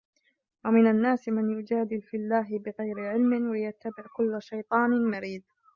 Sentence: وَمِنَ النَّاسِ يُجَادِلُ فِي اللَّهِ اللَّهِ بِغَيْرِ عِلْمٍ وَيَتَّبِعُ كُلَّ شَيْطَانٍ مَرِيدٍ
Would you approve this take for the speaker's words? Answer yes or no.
no